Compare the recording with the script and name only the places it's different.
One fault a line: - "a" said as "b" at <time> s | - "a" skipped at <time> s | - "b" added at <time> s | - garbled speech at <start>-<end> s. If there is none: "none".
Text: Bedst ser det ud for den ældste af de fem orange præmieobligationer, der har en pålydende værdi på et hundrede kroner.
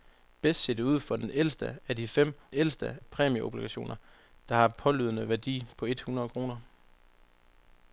- "orange" said as "ældste" at 2.5 s